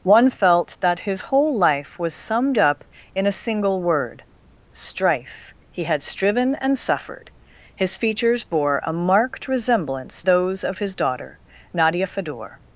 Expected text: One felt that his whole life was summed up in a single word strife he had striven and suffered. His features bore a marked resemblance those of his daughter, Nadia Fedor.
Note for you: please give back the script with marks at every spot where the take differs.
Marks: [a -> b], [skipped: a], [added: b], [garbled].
One felt that his whole life was summed up in a single word strife he had striven and suffered. His features bore a marked resemblance those of his daughter, Nadia Fedor.